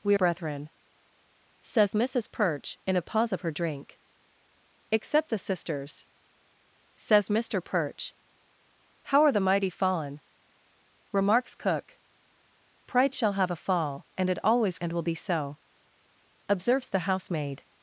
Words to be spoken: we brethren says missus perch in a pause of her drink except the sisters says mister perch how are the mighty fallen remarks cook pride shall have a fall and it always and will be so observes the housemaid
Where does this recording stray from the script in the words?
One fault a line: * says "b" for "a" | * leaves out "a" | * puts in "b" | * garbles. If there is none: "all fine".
all fine